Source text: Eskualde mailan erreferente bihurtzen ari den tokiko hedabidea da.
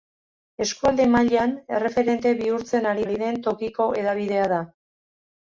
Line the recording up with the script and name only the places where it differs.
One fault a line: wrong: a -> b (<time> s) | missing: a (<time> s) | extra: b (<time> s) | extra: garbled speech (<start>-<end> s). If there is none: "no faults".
extra: ari (3.0 s)